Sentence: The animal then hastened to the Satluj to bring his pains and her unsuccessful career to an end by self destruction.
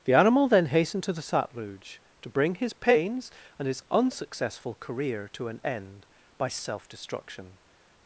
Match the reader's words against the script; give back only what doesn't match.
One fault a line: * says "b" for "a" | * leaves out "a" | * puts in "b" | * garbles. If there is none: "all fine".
* says "his" for "her"